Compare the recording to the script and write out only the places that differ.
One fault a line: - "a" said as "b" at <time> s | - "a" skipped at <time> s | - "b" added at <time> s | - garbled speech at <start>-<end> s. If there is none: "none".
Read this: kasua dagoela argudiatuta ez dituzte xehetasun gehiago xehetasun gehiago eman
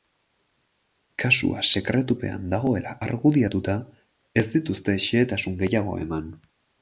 - "sekretupean" added at 1.7 s
- "xehetasun gehiago" skipped at 6.0 s